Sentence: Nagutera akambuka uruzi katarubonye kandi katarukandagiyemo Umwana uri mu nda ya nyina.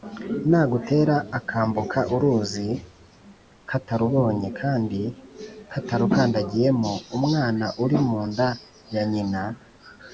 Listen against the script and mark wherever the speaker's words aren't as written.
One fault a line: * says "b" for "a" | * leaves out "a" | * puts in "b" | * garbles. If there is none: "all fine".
all fine